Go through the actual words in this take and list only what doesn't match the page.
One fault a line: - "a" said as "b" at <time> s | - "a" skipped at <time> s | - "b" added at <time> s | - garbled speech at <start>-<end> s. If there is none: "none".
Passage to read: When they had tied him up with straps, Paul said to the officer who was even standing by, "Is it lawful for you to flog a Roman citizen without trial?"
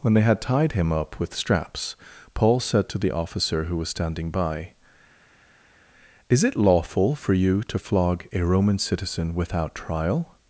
- "even" skipped at 3.9 s